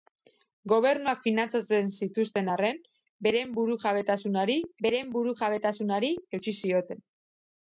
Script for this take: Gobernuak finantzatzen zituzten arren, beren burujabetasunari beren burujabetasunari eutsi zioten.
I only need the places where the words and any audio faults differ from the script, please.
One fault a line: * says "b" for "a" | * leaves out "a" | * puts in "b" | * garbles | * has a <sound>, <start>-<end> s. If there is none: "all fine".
all fine